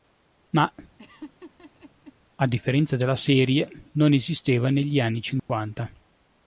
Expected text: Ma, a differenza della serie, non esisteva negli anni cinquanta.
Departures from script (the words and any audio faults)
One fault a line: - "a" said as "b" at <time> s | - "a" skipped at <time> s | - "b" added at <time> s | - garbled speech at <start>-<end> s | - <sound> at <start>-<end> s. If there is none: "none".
- laugh at 1.0-2.1 s
- dropout at 5.4-5.5 s